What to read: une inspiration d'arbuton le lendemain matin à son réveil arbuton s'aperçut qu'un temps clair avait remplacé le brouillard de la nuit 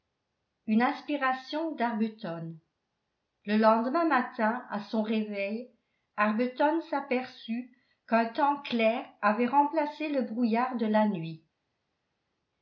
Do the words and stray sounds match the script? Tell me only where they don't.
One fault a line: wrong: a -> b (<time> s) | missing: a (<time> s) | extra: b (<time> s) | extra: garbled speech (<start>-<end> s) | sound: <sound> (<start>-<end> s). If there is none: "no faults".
no faults